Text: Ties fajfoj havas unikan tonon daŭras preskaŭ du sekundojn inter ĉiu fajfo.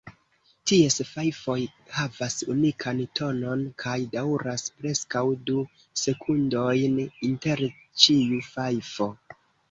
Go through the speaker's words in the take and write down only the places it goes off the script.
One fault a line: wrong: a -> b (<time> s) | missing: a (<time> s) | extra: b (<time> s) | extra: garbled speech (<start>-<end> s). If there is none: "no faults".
extra: kaj (3.8 s)